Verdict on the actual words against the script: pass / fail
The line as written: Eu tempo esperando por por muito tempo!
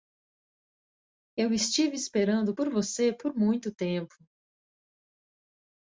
fail